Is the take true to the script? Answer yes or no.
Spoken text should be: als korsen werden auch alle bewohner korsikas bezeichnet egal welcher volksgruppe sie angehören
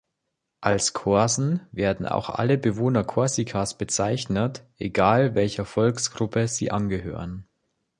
yes